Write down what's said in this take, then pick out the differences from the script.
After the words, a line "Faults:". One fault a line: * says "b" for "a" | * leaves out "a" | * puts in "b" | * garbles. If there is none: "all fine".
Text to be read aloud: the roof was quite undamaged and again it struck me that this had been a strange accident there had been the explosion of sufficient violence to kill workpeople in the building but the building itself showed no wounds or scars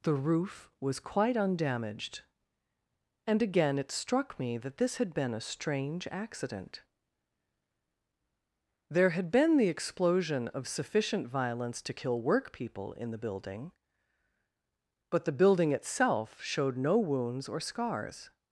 the roof was quite undamaged and again it struck me that this had been a strange accident there had been the explosion of sufficient violence to kill workpeople in the building but the building itself showed no wounds or scars
Faults:
all fine